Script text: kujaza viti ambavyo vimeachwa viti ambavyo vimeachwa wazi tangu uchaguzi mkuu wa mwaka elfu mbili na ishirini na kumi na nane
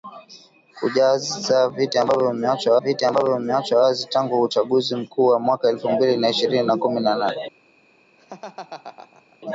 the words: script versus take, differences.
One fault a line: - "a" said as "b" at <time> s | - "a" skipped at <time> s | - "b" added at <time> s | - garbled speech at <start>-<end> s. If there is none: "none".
none